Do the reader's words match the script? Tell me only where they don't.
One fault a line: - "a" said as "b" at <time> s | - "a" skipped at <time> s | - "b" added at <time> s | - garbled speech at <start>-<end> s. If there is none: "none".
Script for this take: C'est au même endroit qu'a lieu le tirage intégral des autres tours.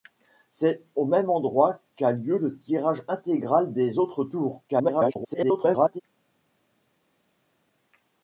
- garbled speech at 4.7-6.0 s